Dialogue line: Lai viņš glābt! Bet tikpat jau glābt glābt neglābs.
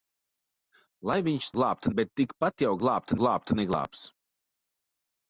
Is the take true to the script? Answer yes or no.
yes